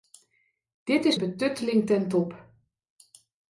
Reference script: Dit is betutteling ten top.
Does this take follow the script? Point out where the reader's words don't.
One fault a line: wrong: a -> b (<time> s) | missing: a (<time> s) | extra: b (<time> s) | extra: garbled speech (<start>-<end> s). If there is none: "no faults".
no faults